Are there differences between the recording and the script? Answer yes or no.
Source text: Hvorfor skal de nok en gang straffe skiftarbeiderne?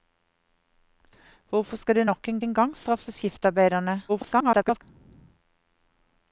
yes